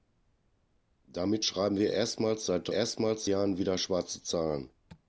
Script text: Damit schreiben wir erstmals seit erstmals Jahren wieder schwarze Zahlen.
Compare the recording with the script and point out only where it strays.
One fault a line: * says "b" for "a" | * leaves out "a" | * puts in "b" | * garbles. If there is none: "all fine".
all fine